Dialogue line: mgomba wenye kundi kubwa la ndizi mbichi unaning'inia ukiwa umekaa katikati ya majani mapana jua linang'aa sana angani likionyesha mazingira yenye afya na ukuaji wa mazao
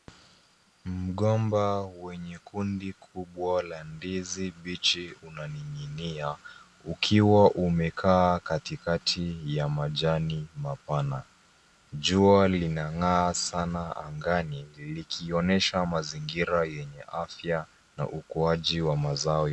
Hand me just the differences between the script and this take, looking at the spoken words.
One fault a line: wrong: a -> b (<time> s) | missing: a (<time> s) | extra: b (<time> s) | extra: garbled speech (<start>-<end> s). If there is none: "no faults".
no faults